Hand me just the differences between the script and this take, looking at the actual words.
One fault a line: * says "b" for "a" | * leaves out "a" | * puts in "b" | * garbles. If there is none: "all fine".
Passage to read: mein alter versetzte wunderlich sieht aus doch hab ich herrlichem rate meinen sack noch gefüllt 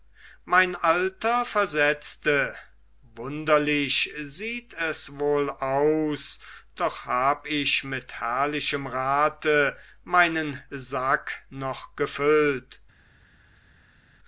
* puts in "es wohl"
* puts in "mit"